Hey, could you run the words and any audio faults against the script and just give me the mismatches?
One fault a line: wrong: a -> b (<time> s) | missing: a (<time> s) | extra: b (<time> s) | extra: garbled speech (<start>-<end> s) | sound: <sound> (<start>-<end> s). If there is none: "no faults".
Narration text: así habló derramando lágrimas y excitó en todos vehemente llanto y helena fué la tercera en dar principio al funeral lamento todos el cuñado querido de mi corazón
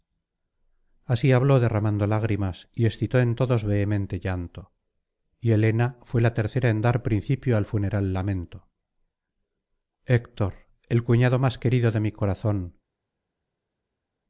wrong: todos -> héctor (10.1 s)
extra: más (11.4 s)